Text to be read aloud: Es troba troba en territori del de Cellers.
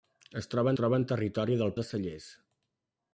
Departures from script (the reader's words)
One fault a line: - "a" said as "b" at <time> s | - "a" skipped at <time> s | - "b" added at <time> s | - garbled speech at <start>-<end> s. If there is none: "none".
none